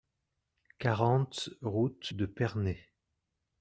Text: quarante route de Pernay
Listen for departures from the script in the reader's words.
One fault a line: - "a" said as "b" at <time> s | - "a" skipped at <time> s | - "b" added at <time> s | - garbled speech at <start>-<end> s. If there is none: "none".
none